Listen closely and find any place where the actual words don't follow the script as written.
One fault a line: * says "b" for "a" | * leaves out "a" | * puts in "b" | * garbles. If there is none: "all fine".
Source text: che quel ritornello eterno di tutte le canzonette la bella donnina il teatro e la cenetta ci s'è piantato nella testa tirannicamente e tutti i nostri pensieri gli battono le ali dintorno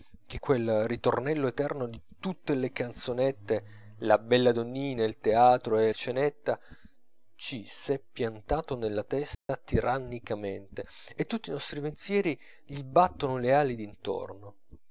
* leaves out "la"